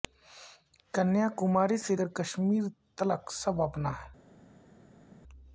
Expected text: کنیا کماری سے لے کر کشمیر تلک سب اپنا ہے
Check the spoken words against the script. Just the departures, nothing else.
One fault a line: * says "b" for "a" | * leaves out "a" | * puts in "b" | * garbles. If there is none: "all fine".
* leaves out "لے"